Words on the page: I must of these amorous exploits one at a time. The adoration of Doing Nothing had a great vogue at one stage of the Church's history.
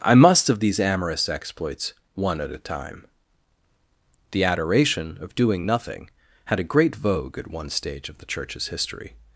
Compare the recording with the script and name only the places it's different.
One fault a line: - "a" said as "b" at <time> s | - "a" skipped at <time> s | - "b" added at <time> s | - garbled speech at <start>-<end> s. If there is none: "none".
none